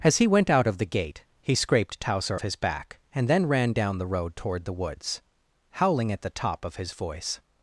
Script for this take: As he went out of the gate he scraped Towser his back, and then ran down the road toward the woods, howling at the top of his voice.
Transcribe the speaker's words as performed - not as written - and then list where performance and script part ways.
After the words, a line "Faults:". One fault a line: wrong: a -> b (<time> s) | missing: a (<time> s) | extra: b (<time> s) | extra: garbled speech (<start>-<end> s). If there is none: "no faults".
As he went out of the gate he scraped Towser his back, and then ran down the road toward the woods, howling at the top of his voice.
Faults:
no faults